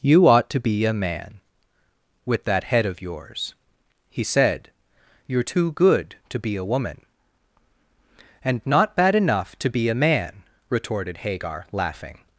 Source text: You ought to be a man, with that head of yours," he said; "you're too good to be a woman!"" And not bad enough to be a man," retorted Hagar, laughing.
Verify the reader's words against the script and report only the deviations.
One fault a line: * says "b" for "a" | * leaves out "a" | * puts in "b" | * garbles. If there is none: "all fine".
all fine